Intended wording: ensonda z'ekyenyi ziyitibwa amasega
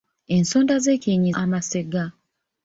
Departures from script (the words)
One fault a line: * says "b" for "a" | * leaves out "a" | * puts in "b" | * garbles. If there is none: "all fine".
* leaves out "ziyitibwa"